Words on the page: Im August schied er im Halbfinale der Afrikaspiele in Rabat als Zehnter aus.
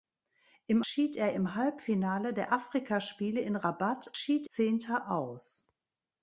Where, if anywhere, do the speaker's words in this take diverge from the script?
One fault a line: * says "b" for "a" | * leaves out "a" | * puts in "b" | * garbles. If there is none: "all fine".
* leaves out "August"
* says "schied" for "als"